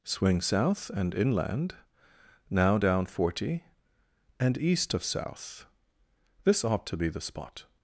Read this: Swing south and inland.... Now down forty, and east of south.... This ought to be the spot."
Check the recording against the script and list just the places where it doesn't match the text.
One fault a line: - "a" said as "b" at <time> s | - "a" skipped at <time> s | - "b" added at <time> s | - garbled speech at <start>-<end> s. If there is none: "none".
none